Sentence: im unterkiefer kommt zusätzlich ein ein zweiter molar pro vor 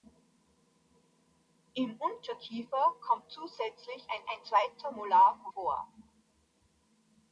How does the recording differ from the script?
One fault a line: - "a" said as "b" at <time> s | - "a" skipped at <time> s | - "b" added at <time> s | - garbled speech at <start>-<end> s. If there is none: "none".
none